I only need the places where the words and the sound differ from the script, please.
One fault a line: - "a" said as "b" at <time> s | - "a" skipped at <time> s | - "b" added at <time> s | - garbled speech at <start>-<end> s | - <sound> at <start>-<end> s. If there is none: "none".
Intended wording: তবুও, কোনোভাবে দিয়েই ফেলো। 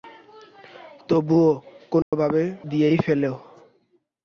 - dropout at 2.0-2.1 s